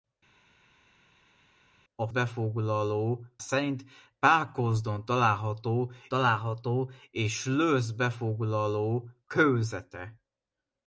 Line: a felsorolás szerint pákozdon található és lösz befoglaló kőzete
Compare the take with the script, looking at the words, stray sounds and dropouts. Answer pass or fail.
fail